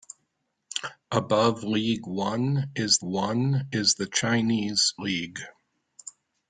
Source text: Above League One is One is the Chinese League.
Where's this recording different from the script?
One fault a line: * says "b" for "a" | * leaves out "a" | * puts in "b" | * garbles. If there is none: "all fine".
all fine